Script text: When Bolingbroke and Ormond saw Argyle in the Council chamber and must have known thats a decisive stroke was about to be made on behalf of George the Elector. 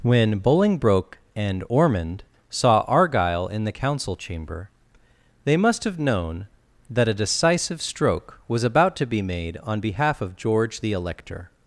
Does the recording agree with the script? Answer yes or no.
no